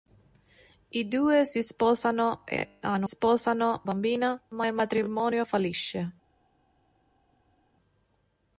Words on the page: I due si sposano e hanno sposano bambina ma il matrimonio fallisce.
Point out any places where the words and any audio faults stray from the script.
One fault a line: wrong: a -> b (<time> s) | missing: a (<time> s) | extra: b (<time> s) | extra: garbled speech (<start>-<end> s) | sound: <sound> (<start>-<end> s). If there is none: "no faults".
no faults